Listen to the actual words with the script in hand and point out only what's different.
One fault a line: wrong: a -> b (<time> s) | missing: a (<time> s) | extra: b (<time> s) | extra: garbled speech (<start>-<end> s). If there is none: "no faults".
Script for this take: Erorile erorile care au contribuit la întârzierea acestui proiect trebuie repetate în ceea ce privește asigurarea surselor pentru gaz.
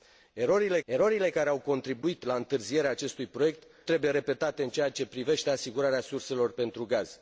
no faults